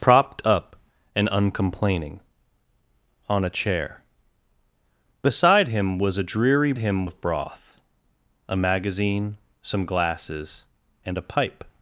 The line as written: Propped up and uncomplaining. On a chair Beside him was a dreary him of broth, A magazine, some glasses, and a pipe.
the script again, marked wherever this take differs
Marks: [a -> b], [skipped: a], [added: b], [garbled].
Propped up and uncomplaining. On a chair Beside him was a dreary him of broth, A magazine, some glasses, and a pipe.